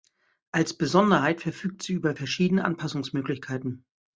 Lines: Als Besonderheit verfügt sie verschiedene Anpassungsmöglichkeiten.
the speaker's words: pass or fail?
fail